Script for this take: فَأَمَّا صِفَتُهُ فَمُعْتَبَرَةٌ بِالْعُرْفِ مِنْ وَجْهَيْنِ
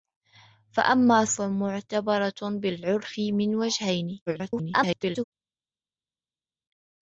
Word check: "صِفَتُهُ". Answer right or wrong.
wrong